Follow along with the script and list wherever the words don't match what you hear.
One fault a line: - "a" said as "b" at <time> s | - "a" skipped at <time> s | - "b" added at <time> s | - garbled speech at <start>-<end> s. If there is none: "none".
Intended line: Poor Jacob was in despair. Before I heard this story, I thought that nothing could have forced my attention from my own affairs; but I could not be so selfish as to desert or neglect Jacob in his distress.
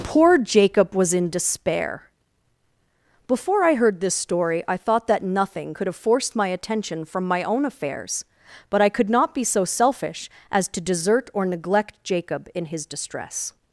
none